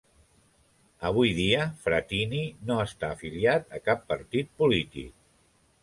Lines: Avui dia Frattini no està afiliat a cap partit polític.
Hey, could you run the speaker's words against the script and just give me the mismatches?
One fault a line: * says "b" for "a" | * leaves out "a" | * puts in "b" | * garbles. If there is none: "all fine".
all fine